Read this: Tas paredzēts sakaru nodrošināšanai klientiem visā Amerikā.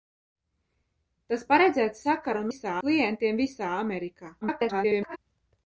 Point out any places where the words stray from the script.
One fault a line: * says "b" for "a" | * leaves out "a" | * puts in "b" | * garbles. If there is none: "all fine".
* says "visā" for "nodrošināšanai"
* garbles